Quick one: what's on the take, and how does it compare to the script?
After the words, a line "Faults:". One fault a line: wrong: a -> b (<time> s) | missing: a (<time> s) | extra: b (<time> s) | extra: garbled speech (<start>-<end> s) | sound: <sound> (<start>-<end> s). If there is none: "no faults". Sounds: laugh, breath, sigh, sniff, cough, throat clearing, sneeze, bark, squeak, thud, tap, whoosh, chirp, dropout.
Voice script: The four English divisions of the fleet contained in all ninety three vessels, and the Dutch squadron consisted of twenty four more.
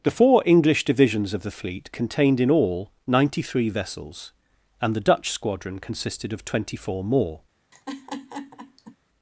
The four English divisions of the fleet contained in all ninety three vessels, and the Dutch squadron consisted of twenty four more.
Faults:
sound: laugh (7.7-9.0 s)